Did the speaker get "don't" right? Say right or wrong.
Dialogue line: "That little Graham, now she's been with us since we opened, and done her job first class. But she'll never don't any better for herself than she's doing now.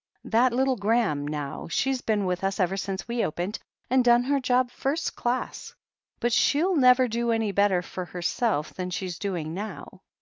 wrong